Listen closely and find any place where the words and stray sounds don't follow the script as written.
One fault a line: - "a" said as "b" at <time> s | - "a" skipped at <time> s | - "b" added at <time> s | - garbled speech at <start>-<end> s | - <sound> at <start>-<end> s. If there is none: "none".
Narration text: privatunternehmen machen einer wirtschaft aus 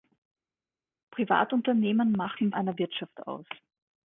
none